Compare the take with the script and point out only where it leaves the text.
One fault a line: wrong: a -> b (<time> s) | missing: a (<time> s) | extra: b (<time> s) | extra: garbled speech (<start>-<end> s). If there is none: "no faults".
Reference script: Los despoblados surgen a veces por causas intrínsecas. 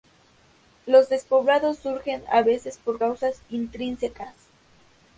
no faults